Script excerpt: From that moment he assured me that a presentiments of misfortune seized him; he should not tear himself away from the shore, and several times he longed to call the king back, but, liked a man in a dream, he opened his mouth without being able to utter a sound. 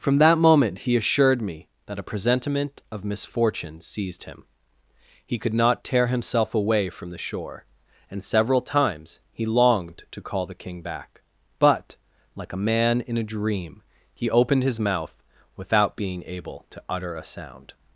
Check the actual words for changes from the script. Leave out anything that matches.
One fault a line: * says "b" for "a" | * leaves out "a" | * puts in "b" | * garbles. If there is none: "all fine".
* says "presentiment" for "presentiments"
* says "could" for "should"
* says "like" for "liked"